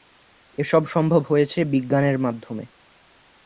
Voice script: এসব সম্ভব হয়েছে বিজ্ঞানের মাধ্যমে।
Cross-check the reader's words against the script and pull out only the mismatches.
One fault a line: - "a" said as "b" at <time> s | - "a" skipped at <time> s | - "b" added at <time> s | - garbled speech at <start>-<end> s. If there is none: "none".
none